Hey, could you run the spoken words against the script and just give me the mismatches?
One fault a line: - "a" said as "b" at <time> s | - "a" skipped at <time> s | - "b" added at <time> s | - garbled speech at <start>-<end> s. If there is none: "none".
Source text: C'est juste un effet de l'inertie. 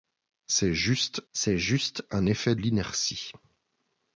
- "c'est juste" added at 1.3 s
- "de" skipped at 2.6 s